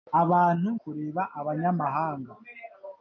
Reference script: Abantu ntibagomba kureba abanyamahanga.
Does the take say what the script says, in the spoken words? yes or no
no